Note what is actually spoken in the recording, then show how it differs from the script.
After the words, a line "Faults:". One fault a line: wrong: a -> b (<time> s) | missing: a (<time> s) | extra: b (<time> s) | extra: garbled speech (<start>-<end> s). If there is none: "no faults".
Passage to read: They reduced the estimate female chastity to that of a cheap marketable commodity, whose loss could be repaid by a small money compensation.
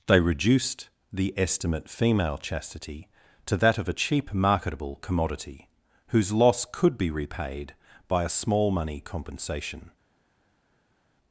They reduced the estimate female chastity to that of a cheap marketable commodity, whose loss could be repaid by a small money compensation.
Faults:
no faults